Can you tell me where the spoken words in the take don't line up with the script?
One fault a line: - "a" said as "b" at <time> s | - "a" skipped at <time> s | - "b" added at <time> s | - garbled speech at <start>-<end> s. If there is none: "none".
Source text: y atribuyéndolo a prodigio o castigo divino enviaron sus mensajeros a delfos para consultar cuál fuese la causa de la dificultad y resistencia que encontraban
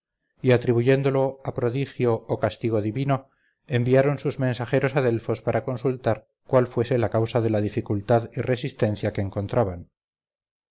none